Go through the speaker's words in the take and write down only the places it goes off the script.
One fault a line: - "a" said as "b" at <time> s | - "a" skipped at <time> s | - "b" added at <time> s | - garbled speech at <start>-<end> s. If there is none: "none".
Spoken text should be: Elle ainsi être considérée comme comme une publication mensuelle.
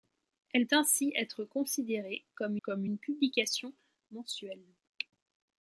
none